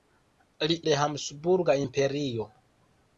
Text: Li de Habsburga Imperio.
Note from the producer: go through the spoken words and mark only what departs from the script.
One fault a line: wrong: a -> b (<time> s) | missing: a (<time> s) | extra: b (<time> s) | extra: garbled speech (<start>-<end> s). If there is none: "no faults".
no faults